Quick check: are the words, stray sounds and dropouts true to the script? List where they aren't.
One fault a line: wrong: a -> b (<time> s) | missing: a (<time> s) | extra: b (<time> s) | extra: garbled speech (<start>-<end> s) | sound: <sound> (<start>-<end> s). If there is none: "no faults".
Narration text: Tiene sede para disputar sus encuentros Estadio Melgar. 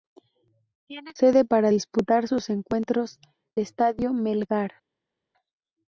no faults